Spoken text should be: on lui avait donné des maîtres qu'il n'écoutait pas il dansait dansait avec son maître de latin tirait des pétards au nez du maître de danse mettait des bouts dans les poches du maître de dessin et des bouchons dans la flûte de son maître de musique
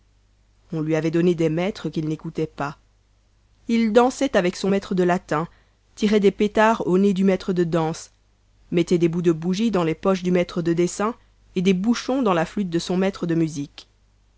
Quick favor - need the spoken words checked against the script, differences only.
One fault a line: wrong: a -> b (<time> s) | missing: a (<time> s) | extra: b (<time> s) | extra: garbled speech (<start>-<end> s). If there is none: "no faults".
missing: dansait (4.3 s)
extra: de bougie (9.2 s)